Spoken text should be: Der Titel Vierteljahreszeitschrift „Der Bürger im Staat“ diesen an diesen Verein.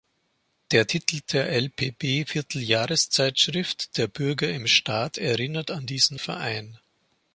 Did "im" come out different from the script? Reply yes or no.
no